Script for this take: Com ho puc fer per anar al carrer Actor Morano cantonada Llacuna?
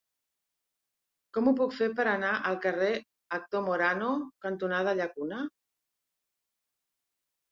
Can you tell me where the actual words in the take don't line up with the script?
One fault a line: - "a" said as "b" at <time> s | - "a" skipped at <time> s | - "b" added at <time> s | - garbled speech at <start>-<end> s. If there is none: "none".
none